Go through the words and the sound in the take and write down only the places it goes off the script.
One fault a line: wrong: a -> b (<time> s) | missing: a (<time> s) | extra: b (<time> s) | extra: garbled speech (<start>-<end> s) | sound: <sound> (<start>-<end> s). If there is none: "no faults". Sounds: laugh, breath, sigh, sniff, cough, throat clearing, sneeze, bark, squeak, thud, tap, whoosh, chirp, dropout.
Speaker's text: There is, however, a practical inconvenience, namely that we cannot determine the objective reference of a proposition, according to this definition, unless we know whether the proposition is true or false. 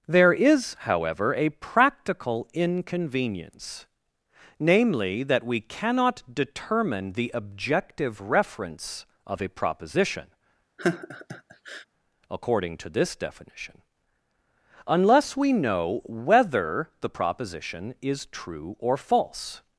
sound: laugh (10.8-11.9 s)